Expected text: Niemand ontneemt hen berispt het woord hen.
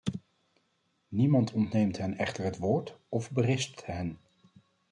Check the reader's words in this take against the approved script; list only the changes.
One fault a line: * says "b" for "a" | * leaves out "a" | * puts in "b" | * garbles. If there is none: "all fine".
* says "echter" for "berispt"
* puts in "of berispt"